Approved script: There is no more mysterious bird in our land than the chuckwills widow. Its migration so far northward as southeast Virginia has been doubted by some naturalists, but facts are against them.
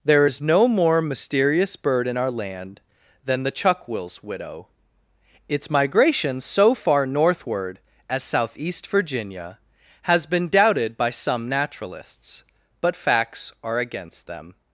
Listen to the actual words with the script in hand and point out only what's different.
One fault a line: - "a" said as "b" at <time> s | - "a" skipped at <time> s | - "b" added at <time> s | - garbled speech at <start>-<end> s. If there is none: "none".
none